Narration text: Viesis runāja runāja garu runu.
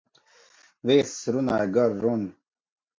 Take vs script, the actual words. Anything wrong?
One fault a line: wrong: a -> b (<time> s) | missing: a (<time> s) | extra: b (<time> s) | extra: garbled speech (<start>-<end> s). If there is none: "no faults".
missing: runāja (1.7 s)